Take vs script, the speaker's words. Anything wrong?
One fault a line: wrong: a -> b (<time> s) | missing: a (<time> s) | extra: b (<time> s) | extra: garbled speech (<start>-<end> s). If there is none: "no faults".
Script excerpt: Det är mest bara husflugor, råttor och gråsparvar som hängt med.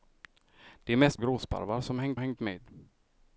missing: bara husflugor råttor (1.2 s)
extra: hängt (2.2 s)